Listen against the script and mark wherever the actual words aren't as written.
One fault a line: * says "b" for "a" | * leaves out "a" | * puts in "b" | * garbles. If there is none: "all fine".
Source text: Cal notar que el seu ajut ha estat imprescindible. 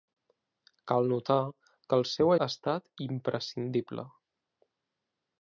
* leaves out "ajut"